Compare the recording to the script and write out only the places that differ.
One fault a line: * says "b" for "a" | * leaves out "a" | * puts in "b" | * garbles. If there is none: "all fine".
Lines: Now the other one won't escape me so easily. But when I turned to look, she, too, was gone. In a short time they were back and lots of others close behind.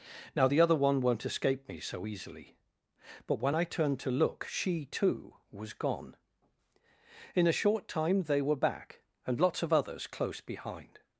all fine